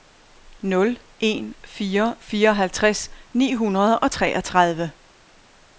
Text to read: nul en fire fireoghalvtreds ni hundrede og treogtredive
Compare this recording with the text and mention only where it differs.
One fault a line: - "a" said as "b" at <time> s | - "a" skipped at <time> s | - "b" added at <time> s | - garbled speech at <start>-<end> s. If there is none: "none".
none